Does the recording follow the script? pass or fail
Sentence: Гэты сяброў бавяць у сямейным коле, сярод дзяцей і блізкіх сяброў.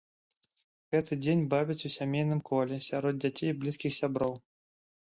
fail